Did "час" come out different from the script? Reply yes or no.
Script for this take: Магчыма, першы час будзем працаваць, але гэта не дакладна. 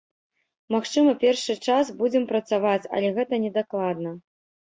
no